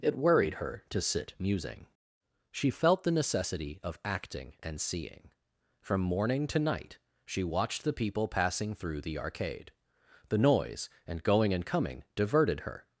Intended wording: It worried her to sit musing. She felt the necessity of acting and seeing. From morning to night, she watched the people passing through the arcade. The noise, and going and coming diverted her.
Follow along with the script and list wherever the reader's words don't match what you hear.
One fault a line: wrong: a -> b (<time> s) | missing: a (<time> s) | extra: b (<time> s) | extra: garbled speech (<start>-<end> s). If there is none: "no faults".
no faults